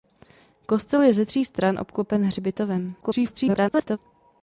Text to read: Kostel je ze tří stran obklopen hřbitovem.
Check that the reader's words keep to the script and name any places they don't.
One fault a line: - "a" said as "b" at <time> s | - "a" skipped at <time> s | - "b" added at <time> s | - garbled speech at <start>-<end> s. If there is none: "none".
- garbled speech at 3.0-4.0 s